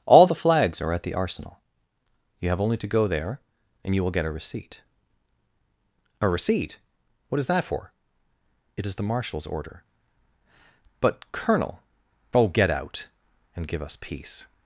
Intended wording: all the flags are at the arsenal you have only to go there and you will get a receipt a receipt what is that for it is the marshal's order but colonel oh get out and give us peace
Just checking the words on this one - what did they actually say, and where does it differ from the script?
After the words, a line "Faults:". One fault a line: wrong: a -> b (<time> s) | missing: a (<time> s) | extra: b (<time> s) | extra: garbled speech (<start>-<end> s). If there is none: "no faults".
all the flags are at the arsenal you have only to go there and you will get a receipt a receipt what is that for it is the marshal's order but colonel oh get out and give us peace
Faults:
no faults